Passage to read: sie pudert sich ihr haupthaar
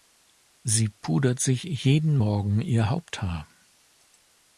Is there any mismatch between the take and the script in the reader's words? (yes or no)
yes